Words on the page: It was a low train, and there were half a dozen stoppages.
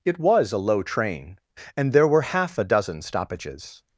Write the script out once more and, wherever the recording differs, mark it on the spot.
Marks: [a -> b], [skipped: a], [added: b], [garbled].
It was a low train, and there were half a dozen stoppages.